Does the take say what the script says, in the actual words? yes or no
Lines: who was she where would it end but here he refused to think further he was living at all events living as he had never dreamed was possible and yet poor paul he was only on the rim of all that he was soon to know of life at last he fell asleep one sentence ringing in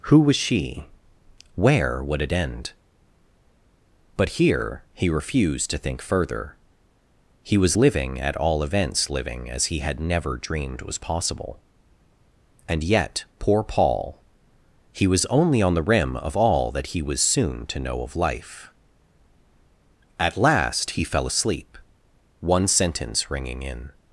yes